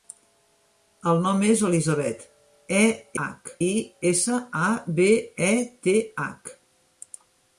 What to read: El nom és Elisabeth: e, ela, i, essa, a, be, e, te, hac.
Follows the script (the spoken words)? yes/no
no